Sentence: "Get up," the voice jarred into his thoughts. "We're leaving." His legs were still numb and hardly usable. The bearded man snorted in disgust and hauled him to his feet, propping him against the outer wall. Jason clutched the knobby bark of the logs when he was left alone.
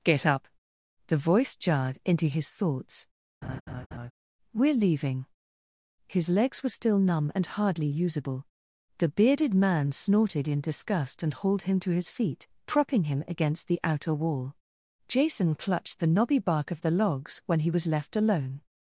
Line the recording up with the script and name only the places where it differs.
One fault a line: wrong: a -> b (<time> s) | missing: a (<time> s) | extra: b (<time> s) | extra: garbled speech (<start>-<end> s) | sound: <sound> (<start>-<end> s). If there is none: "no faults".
sound: laugh (3.4-4.1 s)